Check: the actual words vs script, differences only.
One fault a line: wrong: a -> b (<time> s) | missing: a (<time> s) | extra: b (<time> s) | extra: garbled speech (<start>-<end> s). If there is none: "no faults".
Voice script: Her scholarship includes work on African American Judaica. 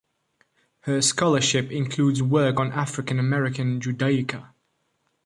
no faults